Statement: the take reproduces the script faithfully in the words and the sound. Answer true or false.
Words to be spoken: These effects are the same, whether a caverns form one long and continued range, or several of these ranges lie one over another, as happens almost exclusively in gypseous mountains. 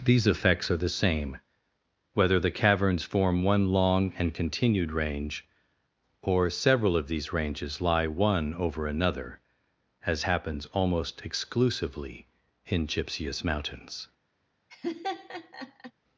false